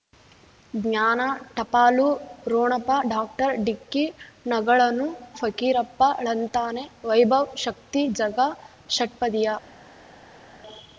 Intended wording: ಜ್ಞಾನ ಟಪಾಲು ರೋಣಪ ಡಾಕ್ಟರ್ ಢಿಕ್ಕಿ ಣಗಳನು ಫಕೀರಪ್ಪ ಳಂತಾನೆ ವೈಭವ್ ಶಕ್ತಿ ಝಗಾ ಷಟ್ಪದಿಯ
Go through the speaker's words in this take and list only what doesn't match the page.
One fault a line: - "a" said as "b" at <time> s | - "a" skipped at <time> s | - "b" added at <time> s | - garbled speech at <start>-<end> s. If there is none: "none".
none